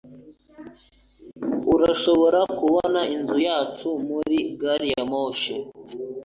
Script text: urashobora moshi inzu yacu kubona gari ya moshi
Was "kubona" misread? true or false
true